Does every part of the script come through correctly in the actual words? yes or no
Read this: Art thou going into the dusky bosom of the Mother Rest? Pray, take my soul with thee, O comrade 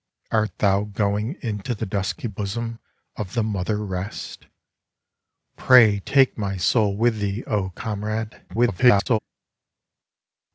no